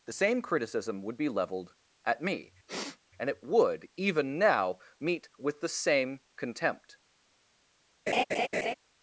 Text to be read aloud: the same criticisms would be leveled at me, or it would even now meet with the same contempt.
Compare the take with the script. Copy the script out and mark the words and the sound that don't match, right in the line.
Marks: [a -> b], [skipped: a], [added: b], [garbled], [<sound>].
the same [criticisms -> criticism] would be leveled at me, [sniff] [or -> and] it would even now meet with the same contempt. [laugh]